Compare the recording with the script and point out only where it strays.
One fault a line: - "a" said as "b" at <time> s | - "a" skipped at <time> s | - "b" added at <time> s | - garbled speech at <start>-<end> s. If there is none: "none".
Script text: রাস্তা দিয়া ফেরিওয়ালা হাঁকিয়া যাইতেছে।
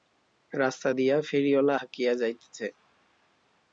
none